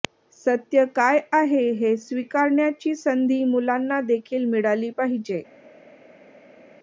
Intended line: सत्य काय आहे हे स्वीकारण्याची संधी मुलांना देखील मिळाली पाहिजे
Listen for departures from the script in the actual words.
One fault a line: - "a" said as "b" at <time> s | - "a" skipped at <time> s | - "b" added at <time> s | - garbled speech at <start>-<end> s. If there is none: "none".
none